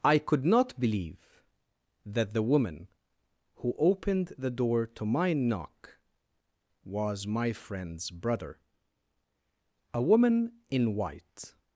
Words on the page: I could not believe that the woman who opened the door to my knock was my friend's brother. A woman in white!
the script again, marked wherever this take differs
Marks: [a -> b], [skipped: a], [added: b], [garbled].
I could not believe that the woman who opened the door to my knock was my friend's brother. A woman in white!